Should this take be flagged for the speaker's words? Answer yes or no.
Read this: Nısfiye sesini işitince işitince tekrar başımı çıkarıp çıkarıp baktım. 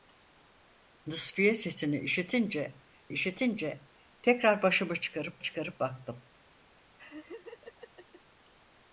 no